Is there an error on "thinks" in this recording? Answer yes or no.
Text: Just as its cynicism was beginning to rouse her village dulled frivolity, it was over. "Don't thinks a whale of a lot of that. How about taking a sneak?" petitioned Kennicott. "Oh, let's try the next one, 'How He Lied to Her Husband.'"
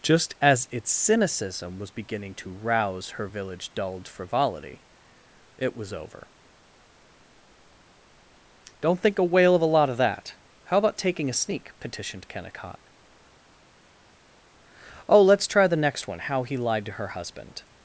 yes